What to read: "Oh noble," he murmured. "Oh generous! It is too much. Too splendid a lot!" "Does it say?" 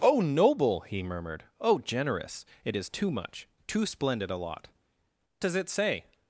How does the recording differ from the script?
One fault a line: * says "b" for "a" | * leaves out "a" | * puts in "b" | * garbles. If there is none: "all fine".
all fine